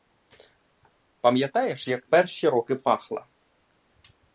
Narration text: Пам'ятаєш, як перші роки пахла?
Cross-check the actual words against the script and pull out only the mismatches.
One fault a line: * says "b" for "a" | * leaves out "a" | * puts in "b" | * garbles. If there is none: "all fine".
all fine